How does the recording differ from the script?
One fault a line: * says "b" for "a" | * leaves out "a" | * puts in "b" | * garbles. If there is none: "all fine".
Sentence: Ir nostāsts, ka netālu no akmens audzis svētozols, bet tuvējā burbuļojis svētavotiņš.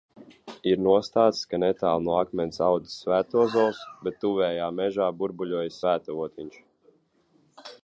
* puts in "mežā"